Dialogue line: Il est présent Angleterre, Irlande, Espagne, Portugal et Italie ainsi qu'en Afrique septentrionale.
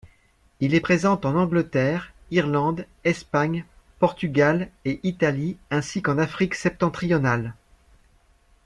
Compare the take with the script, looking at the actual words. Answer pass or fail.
fail